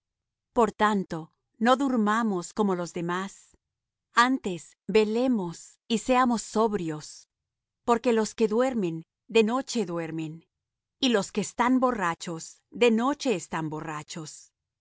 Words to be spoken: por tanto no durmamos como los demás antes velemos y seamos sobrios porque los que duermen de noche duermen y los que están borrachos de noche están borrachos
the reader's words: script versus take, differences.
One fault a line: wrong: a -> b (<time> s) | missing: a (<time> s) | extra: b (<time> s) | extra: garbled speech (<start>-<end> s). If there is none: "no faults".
no faults